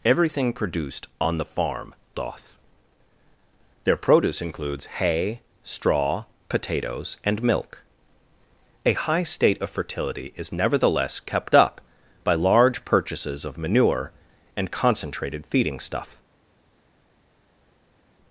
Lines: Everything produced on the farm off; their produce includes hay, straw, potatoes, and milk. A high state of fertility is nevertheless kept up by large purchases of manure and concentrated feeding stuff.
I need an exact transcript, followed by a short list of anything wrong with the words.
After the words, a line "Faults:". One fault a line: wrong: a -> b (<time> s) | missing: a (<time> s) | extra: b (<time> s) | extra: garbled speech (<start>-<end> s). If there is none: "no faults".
Everything produced on the farm off; their produce includes hay, straw, potatoes, and milk. A high state of fertility is nevertheless kept up by large purchases of manure and concentrated feeding stuff.
Faults:
no faults